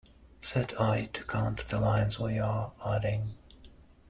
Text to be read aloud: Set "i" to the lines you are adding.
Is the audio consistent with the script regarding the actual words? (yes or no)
no